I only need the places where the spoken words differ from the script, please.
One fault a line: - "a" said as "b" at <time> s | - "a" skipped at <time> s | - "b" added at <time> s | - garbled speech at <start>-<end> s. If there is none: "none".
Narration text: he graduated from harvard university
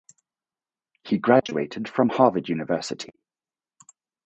none